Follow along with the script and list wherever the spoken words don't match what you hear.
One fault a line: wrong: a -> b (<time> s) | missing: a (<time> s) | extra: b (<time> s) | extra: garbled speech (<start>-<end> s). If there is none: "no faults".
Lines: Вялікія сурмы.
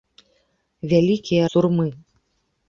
no faults